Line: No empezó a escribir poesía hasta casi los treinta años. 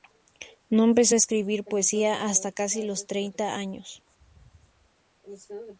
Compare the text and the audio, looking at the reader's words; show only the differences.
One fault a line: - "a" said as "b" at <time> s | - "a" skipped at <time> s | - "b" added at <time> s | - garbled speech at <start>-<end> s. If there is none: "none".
none